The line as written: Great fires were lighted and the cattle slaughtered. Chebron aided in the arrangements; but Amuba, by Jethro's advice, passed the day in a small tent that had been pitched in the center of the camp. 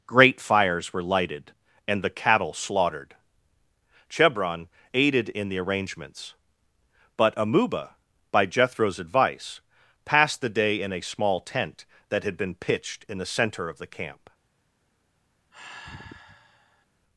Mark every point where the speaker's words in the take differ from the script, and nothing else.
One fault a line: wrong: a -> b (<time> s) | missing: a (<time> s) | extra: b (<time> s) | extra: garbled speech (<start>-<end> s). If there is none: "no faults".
no faults